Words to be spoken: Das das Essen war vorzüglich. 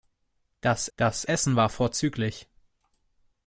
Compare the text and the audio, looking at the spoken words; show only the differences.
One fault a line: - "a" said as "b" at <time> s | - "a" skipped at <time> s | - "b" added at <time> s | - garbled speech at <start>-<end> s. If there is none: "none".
none